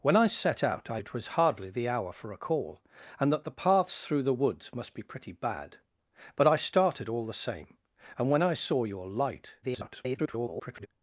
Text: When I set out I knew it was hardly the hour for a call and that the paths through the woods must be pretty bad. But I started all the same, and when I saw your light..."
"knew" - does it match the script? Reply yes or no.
no